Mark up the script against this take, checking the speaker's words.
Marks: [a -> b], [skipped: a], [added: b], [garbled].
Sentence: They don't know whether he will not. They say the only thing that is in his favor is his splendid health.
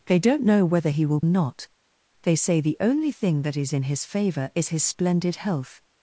They don't know whether he will not. They say the only thing that is in his favor is his splendid health.